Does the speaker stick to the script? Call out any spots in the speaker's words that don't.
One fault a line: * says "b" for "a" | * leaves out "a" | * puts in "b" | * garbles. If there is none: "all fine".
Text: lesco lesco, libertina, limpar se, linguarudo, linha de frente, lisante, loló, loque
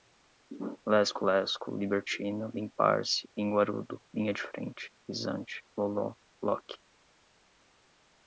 all fine